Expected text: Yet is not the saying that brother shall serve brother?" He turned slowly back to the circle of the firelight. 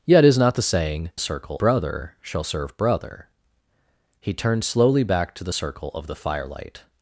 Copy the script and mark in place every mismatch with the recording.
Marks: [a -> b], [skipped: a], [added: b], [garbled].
Yet is not the saying [that -> circle] brother shall serve brother?" He turned slowly back to the circle of the firelight.